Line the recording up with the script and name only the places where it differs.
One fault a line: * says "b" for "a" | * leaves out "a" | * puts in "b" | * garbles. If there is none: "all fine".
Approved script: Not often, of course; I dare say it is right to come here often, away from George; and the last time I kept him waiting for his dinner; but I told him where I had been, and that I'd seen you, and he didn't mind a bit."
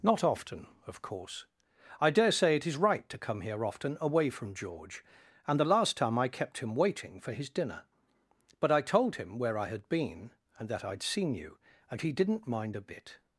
all fine